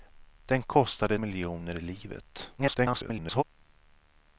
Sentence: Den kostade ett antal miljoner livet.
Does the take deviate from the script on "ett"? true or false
true